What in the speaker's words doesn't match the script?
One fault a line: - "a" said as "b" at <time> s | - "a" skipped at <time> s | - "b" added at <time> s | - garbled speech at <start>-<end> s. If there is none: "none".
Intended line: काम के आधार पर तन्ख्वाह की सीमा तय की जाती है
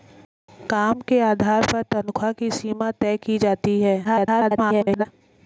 - garbled speech at 4.0-5.1 s